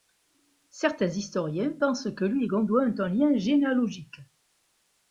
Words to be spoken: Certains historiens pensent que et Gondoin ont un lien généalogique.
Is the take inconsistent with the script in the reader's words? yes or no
yes